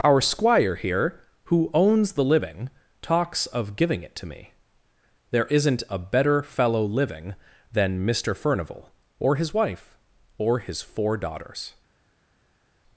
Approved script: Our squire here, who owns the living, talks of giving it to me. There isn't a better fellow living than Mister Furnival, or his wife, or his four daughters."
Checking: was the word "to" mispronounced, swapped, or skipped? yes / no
no